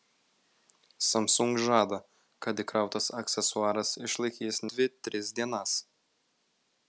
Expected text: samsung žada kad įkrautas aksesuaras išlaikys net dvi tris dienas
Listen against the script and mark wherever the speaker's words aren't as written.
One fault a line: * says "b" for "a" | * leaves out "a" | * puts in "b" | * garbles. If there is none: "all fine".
* leaves out "net"